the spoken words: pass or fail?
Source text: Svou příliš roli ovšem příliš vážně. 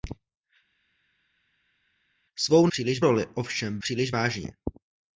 pass